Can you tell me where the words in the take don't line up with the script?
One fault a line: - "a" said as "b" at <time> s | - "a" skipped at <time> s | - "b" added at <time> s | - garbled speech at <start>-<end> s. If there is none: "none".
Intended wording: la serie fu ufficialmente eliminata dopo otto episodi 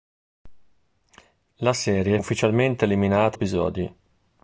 - "fu" skipped at 2.2 s
- "dopo otto" skipped at 3.4 s